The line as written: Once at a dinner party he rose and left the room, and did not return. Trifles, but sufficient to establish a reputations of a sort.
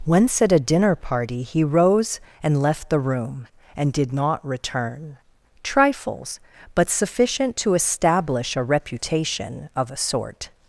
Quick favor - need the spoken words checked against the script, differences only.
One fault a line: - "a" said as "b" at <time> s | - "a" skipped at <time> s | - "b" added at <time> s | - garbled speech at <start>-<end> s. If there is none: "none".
- "reputations" said as "reputation" at 8.6 s